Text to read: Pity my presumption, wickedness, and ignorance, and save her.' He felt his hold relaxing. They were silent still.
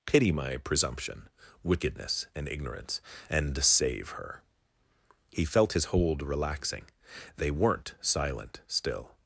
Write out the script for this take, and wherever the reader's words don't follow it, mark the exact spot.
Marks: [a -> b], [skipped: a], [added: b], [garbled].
Pity my presumption, wickedness, and ignorance, and save her.' He felt his hold relaxing. They [were -> weren't] silent still.